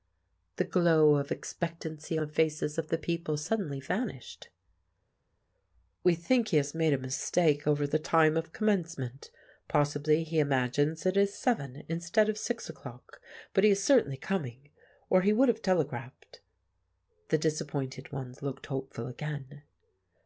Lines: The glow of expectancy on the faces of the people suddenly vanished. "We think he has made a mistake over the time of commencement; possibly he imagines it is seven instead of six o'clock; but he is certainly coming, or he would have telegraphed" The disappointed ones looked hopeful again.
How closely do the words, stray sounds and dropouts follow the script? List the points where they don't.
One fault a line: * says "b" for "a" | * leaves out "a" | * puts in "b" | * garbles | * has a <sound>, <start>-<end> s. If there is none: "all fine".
* leaves out "on"